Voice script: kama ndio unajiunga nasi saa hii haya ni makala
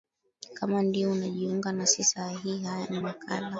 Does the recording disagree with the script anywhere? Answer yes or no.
no